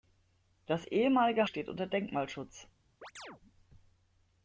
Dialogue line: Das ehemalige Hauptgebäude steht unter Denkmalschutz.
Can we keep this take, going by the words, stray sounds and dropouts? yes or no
no